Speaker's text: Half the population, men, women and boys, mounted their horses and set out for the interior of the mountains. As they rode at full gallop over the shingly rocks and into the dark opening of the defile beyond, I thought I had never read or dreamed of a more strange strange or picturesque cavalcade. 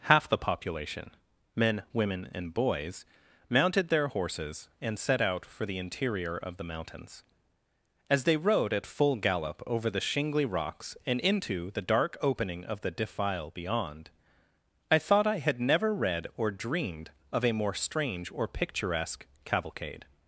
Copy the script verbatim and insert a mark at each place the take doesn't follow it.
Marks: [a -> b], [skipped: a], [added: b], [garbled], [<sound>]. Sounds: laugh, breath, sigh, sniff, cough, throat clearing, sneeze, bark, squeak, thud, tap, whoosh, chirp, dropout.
Half the population, men, women and boys, mounted their horses and set out for the interior of the mountains. As they rode at full gallop over the shingly rocks and into the dark opening of the defile beyond, I thought I had never read or dreamed of a more strange [skipped: strange] or picturesque cavalcade.